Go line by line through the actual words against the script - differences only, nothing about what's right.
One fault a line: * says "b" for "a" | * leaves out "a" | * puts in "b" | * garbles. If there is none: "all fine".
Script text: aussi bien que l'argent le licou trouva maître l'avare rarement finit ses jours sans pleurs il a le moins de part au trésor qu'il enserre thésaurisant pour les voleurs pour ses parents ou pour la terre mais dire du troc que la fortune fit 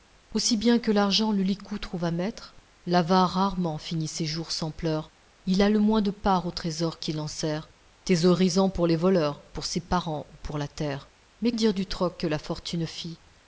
all fine